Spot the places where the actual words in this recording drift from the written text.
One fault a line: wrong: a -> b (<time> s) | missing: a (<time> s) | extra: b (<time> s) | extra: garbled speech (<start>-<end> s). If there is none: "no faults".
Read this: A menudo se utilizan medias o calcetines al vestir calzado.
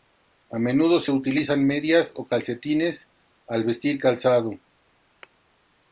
no faults